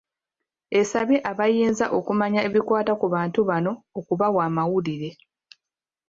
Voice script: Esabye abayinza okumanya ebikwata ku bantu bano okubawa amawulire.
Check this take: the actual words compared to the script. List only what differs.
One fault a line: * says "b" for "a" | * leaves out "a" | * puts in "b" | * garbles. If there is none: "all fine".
all fine